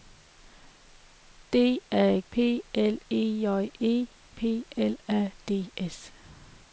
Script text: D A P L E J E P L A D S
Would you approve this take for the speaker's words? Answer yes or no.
yes